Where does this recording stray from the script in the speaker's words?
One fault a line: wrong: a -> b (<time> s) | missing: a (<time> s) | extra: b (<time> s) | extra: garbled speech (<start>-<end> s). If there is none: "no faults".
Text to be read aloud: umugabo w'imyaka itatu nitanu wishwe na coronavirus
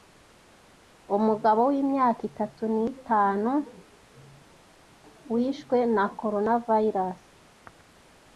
no faults